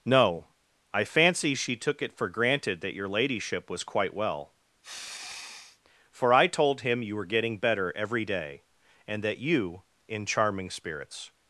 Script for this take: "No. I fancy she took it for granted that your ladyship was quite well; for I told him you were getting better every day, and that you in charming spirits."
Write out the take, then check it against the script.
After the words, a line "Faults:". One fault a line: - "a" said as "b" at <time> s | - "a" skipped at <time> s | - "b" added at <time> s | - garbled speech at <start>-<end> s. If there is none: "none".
"No. I fancy she took it for granted that your ladyship was quite well; for I told him you were getting better every day, and that you in charming spirits."
Faults:
none